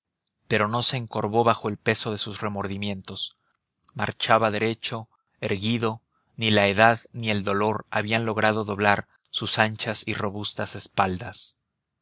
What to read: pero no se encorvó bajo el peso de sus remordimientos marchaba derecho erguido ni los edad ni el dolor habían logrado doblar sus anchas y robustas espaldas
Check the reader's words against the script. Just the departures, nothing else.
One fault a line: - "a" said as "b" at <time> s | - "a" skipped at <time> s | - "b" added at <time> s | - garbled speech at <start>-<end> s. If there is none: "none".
- "los" said as "la" at 6.5 s